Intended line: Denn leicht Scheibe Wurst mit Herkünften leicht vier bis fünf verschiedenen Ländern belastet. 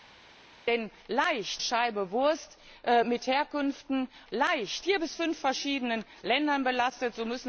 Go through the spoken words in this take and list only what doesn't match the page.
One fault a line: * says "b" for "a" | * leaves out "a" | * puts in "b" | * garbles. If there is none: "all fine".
all fine